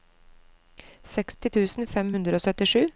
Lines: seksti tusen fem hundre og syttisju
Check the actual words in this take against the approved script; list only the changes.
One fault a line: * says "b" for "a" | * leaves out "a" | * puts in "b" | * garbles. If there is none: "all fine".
all fine